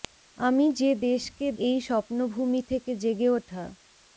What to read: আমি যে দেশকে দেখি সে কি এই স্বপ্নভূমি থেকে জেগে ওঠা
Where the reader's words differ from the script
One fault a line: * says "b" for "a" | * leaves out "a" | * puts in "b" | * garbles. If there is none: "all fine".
* leaves out "দেখি সে কি"